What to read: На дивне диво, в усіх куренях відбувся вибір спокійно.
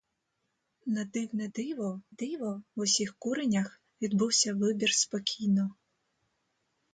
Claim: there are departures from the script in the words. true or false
true